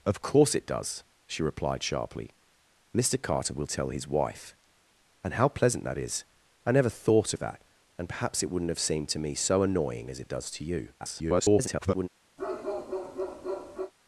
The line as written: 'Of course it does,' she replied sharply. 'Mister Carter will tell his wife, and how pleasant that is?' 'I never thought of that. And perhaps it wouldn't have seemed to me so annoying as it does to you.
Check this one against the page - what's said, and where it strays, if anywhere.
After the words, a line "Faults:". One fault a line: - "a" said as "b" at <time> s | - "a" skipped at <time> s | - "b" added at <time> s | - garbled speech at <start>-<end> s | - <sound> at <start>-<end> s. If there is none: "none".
'Of course it does,' she replied sharply. 'Mister Carter will tell his wife, and how pleasant that is?' 'I never thought of that. And perhaps it wouldn't have seemed to me so annoying as it does to you. [garbled]
Faults:
- garbled speech at 11.0-12.1 s
- bark at 12.4-13.9 s